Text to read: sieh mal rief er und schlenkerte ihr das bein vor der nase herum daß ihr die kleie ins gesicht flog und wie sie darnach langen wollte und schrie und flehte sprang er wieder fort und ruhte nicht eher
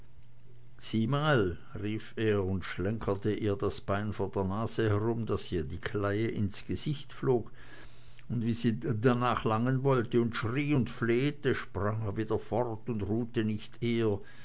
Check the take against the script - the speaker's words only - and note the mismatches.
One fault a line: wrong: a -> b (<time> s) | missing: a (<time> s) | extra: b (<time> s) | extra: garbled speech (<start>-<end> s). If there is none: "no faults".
no faults